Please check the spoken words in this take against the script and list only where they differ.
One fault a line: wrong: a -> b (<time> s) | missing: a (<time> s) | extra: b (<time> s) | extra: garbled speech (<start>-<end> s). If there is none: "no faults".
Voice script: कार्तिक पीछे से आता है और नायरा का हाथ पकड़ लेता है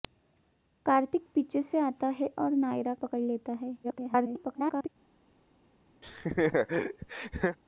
missing: का हाथ (2.9 s)
extra: garbled speech (3.8-4.9 s)